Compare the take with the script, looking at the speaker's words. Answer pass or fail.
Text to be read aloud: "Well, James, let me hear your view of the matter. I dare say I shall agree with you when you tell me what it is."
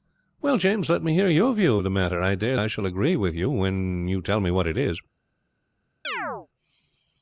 fail